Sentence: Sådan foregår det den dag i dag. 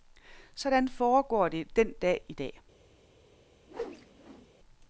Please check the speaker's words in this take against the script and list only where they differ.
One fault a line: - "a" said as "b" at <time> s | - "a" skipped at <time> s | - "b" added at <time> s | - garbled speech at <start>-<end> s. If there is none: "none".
none